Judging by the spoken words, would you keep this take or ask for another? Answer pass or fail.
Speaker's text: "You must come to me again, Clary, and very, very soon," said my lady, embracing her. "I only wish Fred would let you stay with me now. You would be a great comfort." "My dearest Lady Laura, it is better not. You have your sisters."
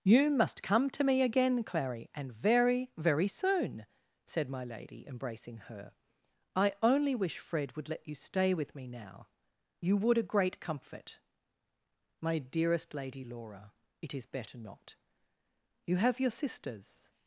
fail